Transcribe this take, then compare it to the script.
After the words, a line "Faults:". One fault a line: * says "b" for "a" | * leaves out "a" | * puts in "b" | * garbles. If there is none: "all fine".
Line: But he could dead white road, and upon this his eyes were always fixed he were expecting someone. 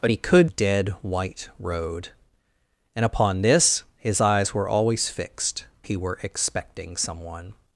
But he could dead white road, and upon this his eyes were always fixed he were expecting someone.
Faults:
all fine